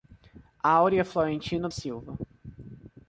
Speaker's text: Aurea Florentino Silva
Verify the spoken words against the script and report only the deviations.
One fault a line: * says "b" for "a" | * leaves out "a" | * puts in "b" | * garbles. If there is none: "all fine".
all fine